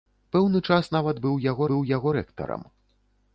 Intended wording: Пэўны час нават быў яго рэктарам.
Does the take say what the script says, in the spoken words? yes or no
no